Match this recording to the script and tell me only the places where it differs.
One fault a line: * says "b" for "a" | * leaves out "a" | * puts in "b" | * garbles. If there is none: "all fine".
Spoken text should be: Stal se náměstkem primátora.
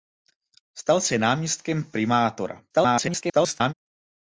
* garbles